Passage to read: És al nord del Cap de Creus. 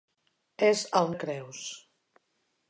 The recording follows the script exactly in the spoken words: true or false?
false